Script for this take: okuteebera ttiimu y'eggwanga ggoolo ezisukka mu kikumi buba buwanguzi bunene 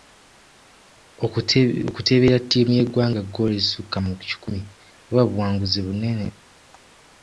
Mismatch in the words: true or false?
false